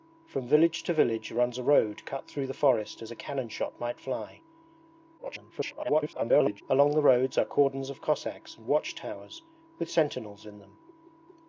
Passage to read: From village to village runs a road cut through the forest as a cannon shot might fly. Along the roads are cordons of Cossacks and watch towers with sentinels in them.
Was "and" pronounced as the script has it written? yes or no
yes